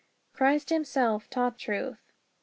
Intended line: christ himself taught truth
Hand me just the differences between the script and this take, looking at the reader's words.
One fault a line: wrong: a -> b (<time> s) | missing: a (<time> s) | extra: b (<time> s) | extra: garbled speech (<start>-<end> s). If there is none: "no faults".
no faults